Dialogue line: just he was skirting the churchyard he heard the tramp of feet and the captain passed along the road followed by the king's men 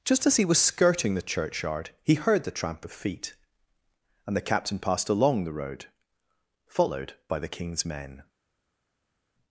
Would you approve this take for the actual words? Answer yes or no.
no